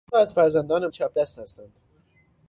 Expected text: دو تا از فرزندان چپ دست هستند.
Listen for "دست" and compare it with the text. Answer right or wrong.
right